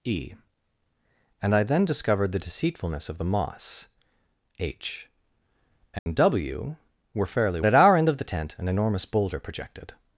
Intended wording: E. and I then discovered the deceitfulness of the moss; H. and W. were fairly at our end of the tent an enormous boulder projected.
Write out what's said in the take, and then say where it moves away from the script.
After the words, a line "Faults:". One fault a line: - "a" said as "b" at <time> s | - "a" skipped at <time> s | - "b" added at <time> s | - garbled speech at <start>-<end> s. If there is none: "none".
E. and I then discovered the deceitfulness of the moss; H. and W. were fairly at our end of the tent an enormous boulder projected.
Faults:
none